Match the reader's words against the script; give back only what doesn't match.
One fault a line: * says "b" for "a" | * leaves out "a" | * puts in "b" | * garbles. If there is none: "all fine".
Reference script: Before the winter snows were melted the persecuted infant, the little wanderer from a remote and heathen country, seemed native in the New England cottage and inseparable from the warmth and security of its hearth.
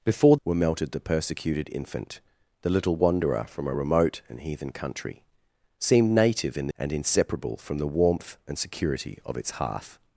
* leaves out "the winter snows"
* leaves out "New England cottage"